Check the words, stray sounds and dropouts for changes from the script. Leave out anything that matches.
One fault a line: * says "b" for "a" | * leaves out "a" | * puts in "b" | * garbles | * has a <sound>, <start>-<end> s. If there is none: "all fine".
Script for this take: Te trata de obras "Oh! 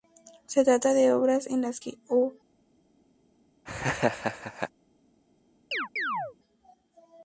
* says "Se" for "Te"
* puts in "en las que"
* has a laugh, 3.7-4.7 s
* has a chirp, 5.7-6.4 s